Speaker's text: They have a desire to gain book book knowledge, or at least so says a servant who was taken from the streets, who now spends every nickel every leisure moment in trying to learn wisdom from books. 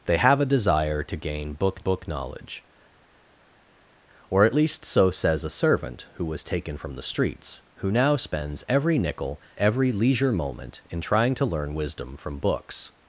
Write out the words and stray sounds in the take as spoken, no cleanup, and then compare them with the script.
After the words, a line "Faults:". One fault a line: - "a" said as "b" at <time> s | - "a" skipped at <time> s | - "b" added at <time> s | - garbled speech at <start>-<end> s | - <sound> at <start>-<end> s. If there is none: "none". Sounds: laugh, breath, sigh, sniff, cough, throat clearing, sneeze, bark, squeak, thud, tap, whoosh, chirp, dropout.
They have a desire to gain book book knowledge, or at least so says a servant who was taken from the streets, who now spends every nickel every leisure moment in trying to learn wisdom from books.
Faults:
none